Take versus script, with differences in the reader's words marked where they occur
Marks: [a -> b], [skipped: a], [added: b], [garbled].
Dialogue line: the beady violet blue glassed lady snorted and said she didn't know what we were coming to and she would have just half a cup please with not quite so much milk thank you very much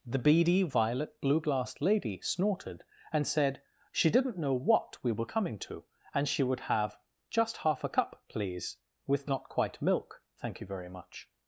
the beady violet blue glassed lady snorted and said she didn't know what we were coming to and she would have just half a cup please with not quite [skipped: so much] milk thank you very much